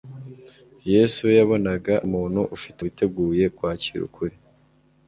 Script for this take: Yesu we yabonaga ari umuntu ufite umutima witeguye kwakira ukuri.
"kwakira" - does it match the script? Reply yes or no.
yes